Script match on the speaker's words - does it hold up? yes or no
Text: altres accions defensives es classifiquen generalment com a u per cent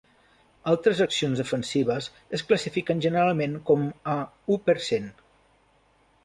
yes